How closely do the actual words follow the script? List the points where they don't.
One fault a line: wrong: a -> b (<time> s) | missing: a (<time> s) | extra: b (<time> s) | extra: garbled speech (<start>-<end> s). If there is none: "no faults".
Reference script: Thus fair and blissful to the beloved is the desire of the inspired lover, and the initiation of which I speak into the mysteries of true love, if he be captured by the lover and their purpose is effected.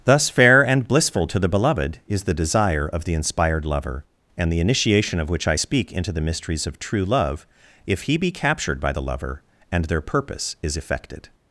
no faults